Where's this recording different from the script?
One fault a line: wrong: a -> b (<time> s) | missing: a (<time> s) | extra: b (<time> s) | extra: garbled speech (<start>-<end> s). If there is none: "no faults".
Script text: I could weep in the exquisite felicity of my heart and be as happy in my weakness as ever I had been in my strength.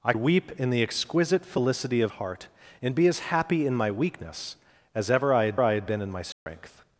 missing: could (0.1 s)
missing: my (2.1 s)
extra: I had (5.6 s)